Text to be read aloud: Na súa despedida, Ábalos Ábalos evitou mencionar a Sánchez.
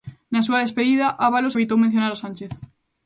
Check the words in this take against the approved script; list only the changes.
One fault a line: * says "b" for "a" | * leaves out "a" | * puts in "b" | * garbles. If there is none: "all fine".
* leaves out "Ábalos"